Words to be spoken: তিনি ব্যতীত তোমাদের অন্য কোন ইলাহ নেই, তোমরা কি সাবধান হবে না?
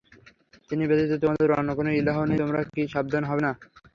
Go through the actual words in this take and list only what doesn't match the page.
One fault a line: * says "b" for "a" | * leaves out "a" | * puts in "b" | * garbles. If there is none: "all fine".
all fine